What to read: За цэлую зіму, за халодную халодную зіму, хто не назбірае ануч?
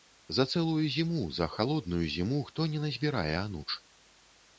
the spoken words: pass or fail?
fail